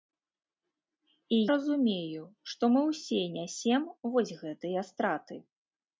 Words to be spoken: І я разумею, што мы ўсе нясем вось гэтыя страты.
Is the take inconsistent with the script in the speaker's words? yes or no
yes